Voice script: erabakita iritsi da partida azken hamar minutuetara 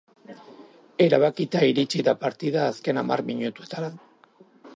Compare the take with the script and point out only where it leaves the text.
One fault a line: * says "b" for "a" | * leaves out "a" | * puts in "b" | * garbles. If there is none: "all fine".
all fine